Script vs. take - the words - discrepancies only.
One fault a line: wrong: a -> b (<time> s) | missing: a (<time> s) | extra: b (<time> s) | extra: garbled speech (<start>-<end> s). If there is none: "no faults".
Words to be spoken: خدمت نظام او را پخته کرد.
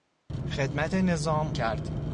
missing: او را پخته (1.5 s)